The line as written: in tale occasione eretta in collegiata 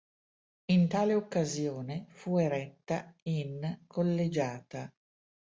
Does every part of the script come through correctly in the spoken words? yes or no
no